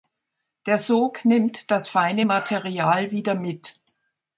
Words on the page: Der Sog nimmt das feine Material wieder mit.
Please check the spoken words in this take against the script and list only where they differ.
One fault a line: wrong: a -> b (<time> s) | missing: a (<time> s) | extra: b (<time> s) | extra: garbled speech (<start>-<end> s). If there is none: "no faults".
no faults